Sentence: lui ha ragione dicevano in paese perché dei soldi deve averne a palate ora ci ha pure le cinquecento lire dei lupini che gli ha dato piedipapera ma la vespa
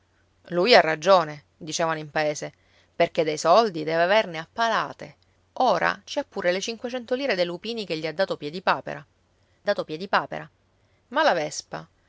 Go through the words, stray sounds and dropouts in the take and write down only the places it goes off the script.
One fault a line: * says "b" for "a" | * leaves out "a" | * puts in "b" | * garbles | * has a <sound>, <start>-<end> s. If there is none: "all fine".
* puts in "dato piedipapera"